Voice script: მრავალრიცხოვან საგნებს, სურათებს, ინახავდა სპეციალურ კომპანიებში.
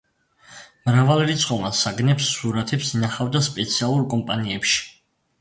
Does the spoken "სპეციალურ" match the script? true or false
true